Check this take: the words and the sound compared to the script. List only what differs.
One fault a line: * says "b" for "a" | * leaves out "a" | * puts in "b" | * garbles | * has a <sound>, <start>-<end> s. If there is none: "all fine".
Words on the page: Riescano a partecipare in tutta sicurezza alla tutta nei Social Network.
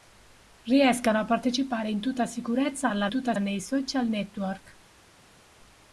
all fine